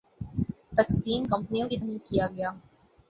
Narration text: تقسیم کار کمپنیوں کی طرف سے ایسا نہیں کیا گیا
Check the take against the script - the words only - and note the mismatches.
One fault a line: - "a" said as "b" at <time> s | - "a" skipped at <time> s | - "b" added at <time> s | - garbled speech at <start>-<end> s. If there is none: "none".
- "کار" skipped at 1.2 s
- "طرف سے ایسا" skipped at 1.8 s